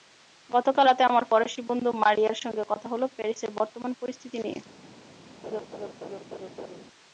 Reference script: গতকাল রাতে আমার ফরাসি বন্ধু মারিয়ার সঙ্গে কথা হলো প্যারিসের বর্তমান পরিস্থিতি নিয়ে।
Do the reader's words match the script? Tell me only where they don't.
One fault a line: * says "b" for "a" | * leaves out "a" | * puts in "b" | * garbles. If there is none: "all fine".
all fine